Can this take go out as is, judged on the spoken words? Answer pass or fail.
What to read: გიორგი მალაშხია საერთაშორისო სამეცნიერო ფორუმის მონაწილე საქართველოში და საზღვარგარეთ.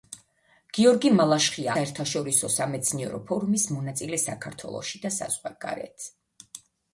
pass